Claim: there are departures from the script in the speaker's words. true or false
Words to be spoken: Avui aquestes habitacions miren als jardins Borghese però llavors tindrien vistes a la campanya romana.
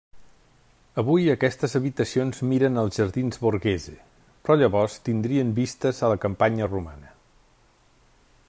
false